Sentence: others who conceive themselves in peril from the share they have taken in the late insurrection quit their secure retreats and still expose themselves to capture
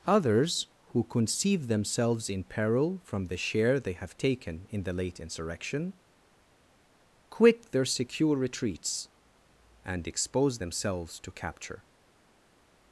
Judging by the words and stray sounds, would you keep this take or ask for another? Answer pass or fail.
fail